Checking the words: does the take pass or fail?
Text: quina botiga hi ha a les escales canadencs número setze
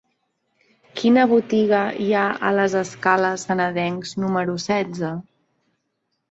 pass